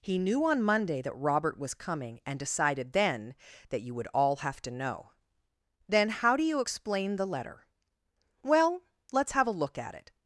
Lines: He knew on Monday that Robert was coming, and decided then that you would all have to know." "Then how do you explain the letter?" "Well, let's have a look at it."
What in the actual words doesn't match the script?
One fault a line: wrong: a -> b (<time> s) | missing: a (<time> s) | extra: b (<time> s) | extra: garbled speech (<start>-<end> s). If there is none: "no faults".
no faults